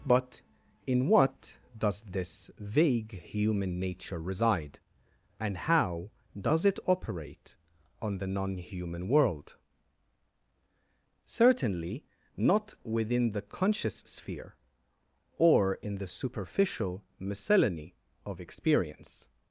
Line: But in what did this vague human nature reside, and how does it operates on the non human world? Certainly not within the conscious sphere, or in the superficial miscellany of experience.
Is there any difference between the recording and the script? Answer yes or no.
yes